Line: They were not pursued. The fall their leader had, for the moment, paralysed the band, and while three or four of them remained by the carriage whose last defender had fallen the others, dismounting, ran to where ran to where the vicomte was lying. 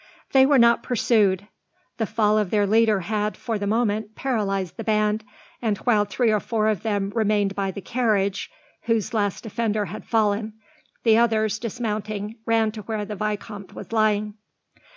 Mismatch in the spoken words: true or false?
true